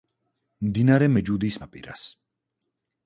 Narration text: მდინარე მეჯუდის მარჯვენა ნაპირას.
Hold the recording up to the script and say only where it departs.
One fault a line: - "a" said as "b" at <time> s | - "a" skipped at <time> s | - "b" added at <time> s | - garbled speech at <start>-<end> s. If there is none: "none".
- "მარჯვენა" skipped at 1.6 s